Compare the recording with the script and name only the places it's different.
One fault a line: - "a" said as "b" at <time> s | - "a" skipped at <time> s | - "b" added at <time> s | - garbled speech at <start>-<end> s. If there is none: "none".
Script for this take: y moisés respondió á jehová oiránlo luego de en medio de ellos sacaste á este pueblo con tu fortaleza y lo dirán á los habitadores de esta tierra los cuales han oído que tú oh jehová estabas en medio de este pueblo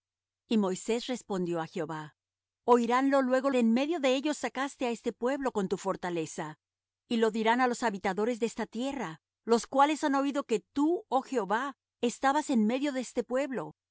none